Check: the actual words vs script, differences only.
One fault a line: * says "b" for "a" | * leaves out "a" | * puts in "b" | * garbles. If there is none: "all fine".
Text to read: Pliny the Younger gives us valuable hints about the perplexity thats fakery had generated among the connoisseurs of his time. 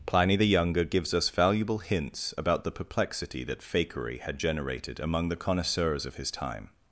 * says "that" for "thats"